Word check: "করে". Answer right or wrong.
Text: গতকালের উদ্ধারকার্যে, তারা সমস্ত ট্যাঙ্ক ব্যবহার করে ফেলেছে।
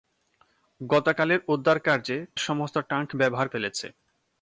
wrong